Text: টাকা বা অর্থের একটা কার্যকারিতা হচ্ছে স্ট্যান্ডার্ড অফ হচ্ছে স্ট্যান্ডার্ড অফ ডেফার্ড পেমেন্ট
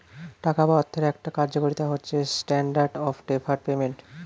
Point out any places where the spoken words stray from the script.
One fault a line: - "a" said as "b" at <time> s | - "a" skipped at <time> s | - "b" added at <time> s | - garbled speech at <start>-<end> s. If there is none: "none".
- "হচ্ছে স্ট্যান্ডার্ড অফ" skipped at 3.2 s